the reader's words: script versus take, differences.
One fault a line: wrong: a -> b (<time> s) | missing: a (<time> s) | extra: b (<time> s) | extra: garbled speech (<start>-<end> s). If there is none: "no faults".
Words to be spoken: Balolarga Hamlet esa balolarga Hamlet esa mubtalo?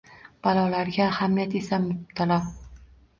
missing: balolarga Hamlet esa (1.8 s)